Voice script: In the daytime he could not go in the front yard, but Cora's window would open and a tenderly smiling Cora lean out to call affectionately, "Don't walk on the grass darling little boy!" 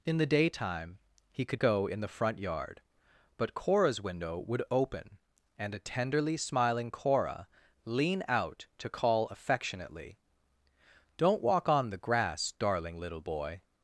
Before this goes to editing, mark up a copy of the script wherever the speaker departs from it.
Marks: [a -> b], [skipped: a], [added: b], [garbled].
In the daytime he could [skipped: not] go in the front yard, but Cora's window would open and a tenderly smiling Cora lean out to call affectionately, "Don't walk on the grass darling little boy!"